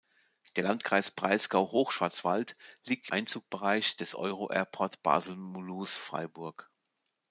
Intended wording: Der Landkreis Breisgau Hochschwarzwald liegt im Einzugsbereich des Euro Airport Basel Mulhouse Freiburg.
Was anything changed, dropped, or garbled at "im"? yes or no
yes